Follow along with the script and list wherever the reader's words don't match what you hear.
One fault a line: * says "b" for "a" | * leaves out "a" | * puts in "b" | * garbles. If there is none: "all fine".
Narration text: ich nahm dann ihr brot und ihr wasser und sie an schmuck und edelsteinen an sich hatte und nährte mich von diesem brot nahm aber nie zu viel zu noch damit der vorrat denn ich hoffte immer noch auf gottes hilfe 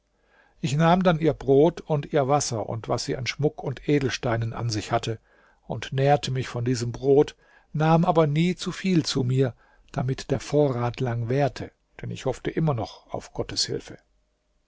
* puts in "was"
* says "mir" for "noch"
* puts in "lang währte"